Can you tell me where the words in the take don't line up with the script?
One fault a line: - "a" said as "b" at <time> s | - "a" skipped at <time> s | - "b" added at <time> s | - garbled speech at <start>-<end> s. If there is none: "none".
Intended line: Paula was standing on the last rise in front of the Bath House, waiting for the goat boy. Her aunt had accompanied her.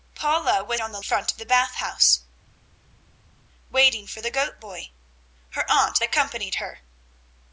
- "standing" skipped at 0.8 s
- "last rise in" skipped at 1.0 s
- "had" skipped at 6.0 s